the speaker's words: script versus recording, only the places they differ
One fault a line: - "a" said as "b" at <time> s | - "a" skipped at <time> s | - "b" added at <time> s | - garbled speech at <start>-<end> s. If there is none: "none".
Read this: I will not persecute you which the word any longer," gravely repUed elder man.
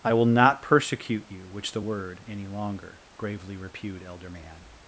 none